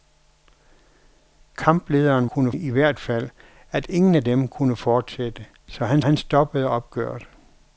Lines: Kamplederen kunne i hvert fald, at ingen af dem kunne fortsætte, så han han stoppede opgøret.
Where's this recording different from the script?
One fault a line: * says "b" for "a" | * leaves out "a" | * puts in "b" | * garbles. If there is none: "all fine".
all fine